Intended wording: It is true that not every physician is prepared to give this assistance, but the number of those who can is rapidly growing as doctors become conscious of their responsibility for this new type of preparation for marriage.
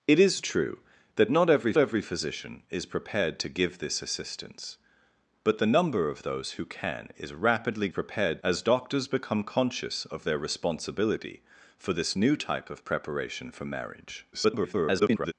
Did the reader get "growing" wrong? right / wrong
wrong